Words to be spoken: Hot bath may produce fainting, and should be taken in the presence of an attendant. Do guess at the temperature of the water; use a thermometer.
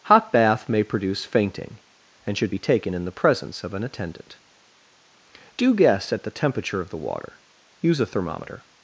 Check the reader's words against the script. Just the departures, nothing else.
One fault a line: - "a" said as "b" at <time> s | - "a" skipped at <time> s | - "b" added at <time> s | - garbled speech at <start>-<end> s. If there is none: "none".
none